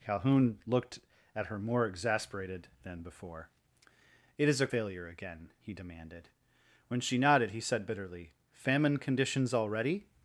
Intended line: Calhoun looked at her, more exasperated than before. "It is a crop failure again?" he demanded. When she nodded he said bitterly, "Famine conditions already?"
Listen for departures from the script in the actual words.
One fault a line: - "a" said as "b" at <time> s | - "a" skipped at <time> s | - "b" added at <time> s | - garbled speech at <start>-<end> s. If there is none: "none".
- "crop" skipped at 4.7 s